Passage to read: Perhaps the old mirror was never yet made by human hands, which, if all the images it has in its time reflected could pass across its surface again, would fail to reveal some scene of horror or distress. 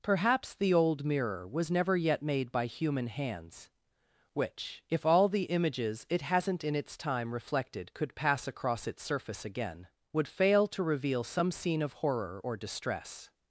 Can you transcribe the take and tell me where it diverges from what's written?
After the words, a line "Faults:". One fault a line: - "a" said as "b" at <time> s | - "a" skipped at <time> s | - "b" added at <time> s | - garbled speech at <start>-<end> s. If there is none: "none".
Perhaps the old mirror was never yet made by human hands, which, if all the images it hasn't in its time reflected could pass across its surface again, would fail to reveal some scene of horror or distress.
Faults:
- "has" said as "hasn't" at 6.2 s